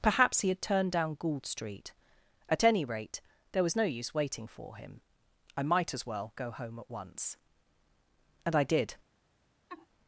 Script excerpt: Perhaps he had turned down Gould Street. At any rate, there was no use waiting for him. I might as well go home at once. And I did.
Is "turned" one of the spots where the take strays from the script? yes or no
no